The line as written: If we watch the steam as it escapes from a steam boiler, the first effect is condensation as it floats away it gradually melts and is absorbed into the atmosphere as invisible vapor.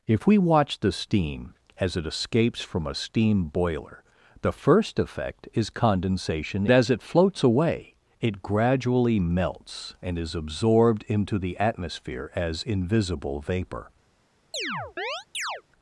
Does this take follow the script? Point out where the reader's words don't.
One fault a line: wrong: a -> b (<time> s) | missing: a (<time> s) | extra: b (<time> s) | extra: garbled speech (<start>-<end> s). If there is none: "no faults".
no faults